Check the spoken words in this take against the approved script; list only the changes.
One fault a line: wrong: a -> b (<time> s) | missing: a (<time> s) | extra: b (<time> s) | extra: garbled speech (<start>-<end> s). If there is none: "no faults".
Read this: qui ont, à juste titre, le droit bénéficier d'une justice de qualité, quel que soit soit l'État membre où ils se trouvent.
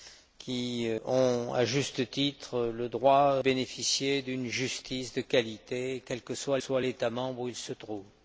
no faults